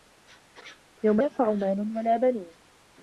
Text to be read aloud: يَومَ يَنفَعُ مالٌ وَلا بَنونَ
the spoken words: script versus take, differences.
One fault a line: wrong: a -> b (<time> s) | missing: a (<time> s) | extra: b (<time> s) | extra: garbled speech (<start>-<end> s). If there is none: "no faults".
no faults